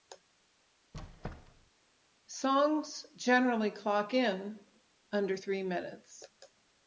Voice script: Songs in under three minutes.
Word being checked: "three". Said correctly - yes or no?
yes